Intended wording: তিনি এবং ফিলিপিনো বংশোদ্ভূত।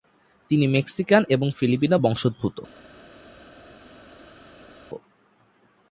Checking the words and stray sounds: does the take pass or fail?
fail